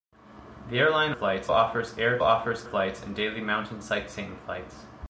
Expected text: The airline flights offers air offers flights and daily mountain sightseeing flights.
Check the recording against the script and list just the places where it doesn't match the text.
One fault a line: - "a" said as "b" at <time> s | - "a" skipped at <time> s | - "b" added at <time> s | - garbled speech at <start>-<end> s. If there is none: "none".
none